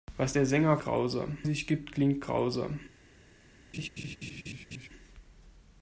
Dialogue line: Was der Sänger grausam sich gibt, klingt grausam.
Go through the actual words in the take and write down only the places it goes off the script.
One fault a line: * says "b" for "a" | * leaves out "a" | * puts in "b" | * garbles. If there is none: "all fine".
all fine